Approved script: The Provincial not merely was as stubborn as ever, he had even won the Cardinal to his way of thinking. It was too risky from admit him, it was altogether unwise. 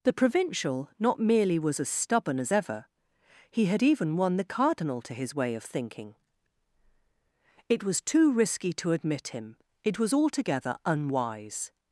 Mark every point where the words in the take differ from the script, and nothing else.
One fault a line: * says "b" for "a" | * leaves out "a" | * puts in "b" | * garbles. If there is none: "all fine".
* says "to" for "from"